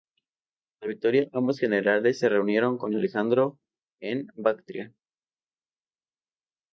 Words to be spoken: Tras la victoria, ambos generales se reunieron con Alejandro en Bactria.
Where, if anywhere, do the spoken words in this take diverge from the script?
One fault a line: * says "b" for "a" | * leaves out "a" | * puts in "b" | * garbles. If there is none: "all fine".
all fine